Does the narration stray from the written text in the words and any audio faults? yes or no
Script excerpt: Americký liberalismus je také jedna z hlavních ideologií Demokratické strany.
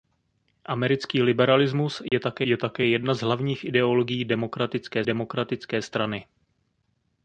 yes